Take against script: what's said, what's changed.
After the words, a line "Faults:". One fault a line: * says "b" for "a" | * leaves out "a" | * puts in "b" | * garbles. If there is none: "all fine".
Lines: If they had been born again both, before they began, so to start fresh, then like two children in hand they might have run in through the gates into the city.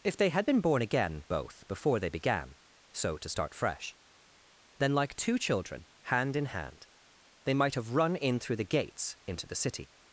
If they had been born again both, before they began, so to start fresh, then like two children hand in hand they might have run in through the gates into the city.
Faults:
* puts in "hand"